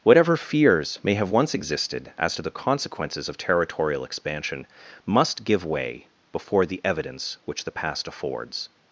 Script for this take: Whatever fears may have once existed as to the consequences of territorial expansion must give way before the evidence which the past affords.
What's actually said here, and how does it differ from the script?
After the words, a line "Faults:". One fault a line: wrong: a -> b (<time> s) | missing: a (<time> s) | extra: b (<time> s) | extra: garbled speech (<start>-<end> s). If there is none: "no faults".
Whatever fears may have once existed as to the consequences of territorial expansion must give way before the evidence which the past affords.
Faults:
no faults